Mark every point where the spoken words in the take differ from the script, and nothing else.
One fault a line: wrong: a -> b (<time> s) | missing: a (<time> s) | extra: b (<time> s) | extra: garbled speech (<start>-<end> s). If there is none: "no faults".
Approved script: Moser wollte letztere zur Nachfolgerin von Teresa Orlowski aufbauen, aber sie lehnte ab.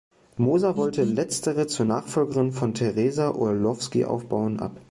missing: aber sie lehnte (4.6 s)